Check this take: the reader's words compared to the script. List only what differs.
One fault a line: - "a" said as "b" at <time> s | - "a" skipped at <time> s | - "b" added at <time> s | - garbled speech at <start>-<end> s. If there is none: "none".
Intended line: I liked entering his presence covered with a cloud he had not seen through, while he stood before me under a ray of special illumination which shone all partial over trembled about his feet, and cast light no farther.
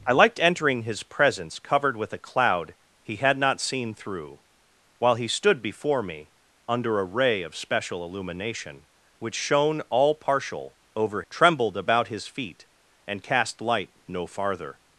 none